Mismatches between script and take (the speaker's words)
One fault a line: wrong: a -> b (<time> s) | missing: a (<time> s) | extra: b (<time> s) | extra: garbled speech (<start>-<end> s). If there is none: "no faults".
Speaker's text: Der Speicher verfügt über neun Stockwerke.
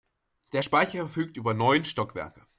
no faults